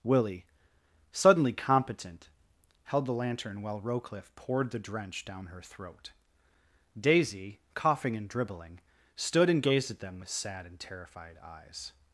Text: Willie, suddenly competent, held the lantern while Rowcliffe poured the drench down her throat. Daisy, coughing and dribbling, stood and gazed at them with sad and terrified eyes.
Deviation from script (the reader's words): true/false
false